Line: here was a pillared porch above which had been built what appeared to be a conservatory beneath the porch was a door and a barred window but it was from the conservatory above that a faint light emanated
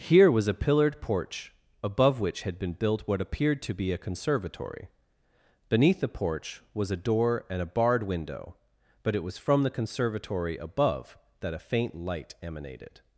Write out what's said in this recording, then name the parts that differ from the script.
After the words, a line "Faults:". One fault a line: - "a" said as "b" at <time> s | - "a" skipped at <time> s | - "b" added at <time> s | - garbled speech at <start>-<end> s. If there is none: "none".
here was a pillared porch above which had been built what appeared to be a conservatory beneath the porch was a door and a barred window but it was from the conservatory above that a faint light emanated
Faults:
none